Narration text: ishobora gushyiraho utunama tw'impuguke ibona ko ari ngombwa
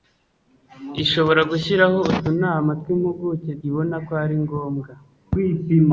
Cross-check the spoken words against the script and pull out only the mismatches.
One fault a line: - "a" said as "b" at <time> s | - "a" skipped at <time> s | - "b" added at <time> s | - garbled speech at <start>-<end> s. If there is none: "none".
none